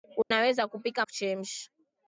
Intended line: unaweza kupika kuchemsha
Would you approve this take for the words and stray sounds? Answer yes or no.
no